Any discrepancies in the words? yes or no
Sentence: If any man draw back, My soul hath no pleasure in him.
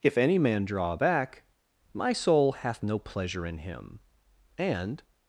yes